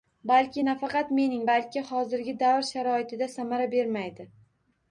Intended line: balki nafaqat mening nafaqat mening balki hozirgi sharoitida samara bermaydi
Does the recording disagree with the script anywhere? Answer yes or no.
yes